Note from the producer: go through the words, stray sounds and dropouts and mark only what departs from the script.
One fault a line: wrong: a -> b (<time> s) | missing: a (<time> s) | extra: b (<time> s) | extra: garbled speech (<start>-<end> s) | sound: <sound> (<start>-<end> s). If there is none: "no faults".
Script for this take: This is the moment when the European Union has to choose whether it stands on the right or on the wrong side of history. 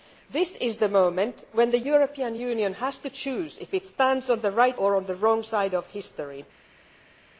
no faults